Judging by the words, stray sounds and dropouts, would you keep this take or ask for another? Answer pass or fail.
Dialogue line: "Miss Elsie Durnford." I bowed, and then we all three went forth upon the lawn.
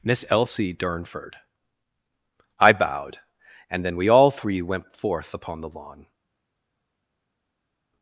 pass